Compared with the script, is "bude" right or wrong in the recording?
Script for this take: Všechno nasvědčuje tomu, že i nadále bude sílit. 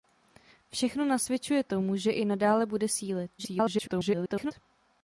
right